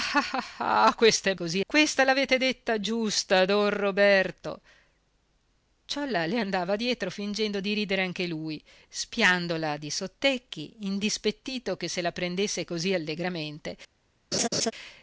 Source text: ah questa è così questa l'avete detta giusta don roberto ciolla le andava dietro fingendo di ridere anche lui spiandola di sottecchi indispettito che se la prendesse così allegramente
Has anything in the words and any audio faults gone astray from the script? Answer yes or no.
yes